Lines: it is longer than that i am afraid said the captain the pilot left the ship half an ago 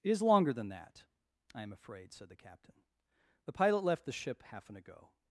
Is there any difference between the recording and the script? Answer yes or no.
no